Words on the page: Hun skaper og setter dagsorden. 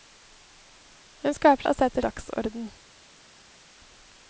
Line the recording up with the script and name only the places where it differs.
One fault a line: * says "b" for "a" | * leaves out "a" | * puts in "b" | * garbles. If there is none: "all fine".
all fine